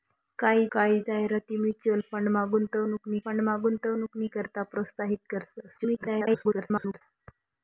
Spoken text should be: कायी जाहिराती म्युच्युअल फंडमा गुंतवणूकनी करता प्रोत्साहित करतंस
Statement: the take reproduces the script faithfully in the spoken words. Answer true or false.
false